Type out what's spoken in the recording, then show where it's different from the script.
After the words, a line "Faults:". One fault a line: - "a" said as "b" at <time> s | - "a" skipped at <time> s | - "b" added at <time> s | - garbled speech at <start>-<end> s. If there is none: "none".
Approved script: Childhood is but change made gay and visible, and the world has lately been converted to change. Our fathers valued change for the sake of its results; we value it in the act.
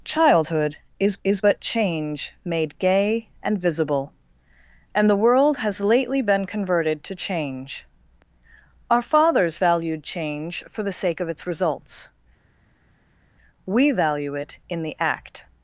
Childhood is is but change made gay and visible, and the world has lately been converted to change. Our fathers valued change for the sake of its results; we value it in the act.
Faults:
- "is" added at 1.2 s